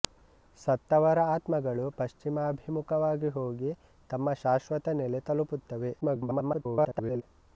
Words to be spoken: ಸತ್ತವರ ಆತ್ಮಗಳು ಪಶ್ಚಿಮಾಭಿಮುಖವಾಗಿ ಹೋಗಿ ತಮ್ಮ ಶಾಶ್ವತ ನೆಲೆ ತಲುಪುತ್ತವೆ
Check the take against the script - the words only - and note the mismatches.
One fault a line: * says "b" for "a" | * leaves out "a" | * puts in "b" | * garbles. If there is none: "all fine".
* garbles